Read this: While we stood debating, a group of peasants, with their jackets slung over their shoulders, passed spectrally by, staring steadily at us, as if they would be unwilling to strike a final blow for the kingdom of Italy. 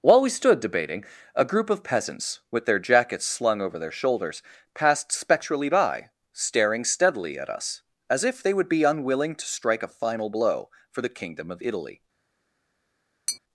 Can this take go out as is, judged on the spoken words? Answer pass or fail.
pass